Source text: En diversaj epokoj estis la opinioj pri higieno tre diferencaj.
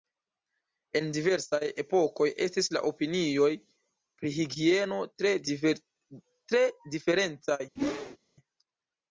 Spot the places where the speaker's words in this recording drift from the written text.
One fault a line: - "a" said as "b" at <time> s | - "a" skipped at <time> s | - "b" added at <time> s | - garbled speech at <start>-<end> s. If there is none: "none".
none